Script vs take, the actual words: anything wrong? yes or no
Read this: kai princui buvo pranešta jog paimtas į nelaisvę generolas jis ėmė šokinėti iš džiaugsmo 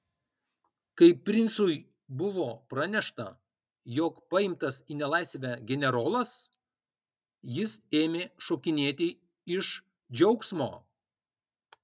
no